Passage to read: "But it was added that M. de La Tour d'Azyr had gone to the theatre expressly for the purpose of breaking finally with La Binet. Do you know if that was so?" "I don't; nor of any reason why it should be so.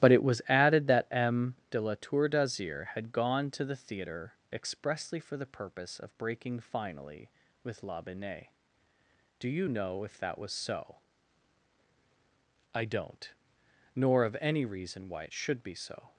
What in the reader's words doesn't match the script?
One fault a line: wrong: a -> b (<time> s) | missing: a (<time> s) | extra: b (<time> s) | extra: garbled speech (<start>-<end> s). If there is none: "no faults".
no faults